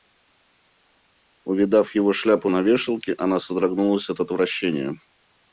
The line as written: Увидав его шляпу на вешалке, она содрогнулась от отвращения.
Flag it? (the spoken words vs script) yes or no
no